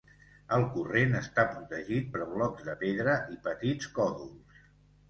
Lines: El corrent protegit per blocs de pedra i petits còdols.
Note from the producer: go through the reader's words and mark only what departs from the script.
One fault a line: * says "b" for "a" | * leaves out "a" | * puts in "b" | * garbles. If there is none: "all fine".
* puts in "està"